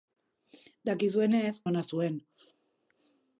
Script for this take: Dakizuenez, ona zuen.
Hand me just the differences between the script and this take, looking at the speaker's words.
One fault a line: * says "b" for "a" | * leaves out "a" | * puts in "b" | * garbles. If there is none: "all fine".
all fine